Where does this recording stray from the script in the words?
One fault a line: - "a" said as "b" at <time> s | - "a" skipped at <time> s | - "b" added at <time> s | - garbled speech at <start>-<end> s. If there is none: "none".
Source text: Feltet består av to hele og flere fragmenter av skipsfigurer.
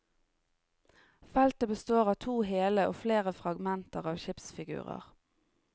none